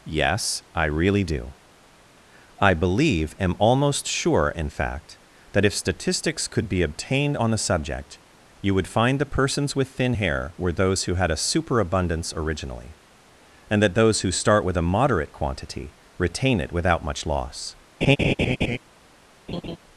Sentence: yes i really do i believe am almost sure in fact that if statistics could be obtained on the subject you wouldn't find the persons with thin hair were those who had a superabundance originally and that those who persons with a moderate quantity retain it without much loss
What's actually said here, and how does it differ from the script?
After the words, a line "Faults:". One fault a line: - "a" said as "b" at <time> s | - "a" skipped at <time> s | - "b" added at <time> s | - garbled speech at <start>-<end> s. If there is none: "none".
yes i really do i believe am almost sure in fact that if statistics could be obtained on the subject you would find the persons with thin hair were those who had a superabundance originally and that those who start with a moderate quantity retain it without much loss
Faults:
- "wouldn't" said as "would" at 8.7 s
- "persons" said as "start" at 14.3 s